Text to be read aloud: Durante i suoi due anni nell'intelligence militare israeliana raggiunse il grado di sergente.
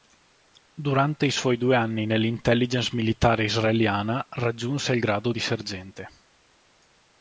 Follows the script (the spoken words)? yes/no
yes